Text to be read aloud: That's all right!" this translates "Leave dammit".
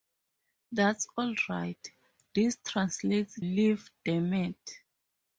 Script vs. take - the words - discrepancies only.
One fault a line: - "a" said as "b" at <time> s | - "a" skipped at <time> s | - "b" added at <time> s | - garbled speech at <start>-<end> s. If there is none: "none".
none